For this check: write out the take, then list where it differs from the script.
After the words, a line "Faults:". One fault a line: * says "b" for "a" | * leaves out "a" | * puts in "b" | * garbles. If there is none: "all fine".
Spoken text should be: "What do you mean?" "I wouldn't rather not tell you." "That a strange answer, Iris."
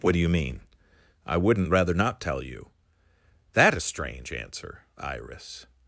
"What do you mean?" "I wouldn't rather not tell you." "That a strange answer, Iris."
Faults:
all fine